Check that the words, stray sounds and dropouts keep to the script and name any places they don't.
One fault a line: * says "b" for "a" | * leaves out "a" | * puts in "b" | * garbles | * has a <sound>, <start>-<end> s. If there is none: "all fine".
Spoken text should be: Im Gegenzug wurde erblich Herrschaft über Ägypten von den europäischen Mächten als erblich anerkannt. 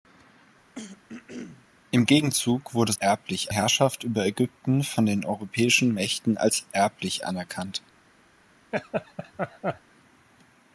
* has a throat clearing, 0.8-1.7 s
* has a laugh, 8.7-9.8 s